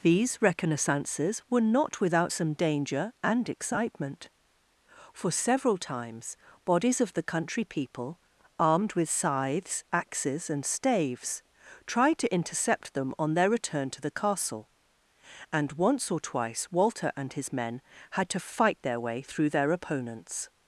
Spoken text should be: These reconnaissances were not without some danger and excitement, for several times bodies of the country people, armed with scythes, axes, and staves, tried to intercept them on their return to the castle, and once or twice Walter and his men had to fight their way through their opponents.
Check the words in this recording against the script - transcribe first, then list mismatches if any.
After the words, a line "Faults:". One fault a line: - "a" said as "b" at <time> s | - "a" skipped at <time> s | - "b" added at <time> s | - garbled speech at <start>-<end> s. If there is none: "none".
These reconnaissances were not without some danger and excitement, for several times bodies of the country people, armed with scythes, axes, and staves, tried to intercept them on their return to the castle, and once or twice Walter and his men had to fight their way through their opponents.
Faults:
none